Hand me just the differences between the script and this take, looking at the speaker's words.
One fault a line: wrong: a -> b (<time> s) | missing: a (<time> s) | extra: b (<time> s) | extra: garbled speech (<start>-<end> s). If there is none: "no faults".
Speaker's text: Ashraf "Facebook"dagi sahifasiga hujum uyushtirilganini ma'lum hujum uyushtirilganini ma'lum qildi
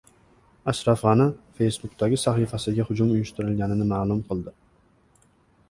extra: G‘ani (1.1 s)
missing: hujum uyushtirilganini ma'lum (4.2 s)